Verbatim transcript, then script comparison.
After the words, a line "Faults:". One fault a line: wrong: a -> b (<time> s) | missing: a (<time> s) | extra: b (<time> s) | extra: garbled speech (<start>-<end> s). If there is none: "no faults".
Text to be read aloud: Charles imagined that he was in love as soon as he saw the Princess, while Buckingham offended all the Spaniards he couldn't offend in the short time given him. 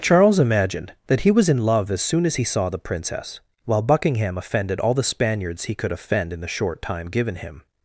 Charles imagined that he was in love as soon as he saw the Princess, while Buckingham offended all the Spaniards he could offend in the short time given him.
Faults:
wrong: couldn't -> could (5.7 s)